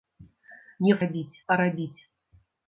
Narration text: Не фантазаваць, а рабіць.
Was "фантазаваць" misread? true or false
true